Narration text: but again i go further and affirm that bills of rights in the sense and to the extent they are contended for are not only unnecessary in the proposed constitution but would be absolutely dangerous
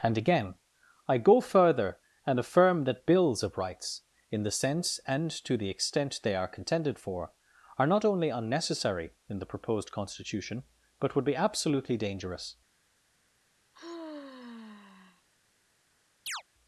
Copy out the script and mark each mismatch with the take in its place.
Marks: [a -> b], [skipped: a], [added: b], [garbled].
[but -> and] again i go further and affirm that bills of rights in the sense and to the extent they are contended for are not only unnecessary in the proposed constitution but would be absolutely dangerous